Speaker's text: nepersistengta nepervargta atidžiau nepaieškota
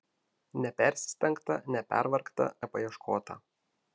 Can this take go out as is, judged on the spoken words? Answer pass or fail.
fail